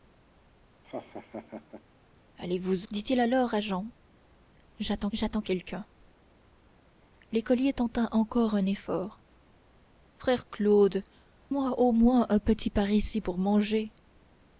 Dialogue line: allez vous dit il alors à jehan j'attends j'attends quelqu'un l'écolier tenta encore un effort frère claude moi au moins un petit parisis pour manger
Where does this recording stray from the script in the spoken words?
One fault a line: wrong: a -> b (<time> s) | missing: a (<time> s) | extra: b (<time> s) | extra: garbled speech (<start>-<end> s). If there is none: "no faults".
no faults